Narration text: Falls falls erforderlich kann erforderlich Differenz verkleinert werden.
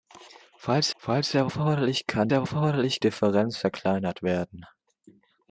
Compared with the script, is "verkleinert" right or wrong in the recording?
right